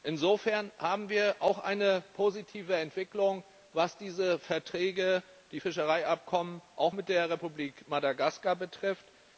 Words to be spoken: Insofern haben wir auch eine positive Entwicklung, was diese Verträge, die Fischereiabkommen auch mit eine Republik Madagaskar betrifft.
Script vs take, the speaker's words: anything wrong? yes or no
yes